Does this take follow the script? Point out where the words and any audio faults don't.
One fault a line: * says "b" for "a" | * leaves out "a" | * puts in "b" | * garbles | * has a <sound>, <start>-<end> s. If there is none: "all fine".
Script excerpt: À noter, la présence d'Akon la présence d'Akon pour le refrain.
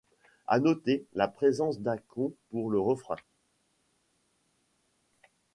* leaves out "la présence d'Akon"